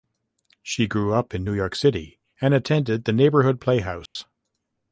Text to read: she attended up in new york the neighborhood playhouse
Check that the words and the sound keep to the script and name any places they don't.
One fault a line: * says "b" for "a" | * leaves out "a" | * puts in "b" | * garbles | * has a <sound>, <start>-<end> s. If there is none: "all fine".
* says "grew" for "attended"
* puts in "city and attended"
* has a dropout, 4.1-4.2 s